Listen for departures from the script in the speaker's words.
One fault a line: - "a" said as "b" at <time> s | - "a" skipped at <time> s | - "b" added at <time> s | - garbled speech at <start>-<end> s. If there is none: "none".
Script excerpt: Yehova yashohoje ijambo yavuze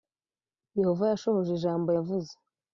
none